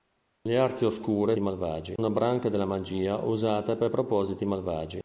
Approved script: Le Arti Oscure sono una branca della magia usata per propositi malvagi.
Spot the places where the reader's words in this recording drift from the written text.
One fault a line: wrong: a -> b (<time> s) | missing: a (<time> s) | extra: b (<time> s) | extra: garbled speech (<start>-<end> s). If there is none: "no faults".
wrong: sono -> malvagi (1.4 s)